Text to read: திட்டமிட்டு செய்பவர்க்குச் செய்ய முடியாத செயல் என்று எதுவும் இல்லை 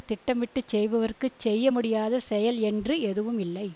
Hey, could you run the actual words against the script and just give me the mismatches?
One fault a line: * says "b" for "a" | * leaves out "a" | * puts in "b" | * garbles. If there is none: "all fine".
all fine